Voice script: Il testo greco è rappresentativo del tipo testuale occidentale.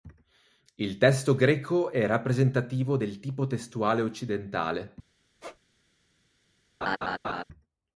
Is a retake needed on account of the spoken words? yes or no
no